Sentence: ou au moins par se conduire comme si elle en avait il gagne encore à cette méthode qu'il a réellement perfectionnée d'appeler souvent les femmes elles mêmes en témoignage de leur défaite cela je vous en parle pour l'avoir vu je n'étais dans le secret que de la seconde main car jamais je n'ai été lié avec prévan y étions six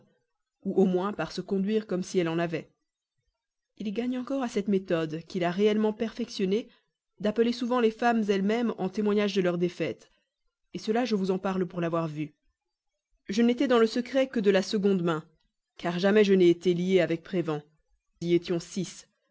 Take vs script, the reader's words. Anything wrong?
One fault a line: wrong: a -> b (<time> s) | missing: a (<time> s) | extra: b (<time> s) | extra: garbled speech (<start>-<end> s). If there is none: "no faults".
no faults